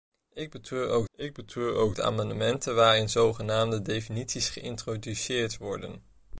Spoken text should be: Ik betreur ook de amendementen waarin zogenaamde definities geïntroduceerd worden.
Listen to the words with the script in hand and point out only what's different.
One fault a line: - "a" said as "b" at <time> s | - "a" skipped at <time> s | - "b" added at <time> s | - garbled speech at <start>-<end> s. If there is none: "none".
- "ik betreur ook" added at 1.2 s